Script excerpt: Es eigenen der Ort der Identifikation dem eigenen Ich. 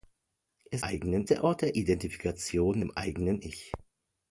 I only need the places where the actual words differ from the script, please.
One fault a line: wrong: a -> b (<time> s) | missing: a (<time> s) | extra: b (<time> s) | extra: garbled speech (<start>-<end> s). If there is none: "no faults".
no faults